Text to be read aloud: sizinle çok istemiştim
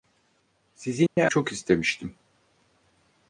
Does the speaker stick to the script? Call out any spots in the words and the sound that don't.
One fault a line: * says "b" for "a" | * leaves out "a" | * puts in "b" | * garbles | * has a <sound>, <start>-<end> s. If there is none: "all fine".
* has a dropout, 1.1-1.2 s